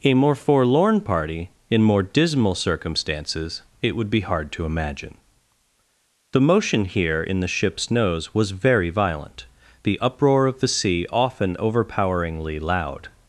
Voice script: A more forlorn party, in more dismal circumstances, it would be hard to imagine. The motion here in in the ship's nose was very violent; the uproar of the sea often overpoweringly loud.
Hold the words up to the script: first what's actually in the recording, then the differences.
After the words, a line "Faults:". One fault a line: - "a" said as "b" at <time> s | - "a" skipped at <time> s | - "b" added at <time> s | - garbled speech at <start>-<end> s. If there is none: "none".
A more forlorn party, in more dismal circumstances, it would be hard to imagine. The motion here in the ship's nose was very violent; the uproar of the sea often overpoweringly loud.
Faults:
- "in" skipped at 7.4 s